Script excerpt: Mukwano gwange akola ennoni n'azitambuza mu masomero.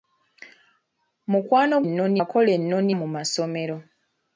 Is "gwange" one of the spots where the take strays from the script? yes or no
yes